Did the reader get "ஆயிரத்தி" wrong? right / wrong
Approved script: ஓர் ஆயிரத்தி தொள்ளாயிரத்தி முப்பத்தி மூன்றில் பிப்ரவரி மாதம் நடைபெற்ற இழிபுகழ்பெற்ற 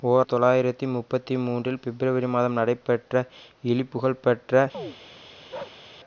wrong